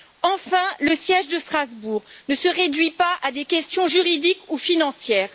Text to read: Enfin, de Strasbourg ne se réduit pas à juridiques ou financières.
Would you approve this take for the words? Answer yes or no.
no